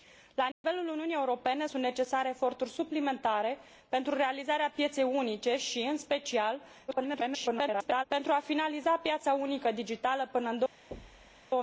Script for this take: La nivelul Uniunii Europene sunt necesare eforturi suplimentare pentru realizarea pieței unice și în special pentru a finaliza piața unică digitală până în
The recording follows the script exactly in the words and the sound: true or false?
false